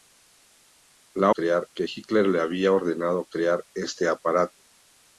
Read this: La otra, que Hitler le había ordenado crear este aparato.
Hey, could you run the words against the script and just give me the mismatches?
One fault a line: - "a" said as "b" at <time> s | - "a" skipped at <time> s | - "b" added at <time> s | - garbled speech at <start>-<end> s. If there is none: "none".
- "otra" said as "crear" at 1.3 s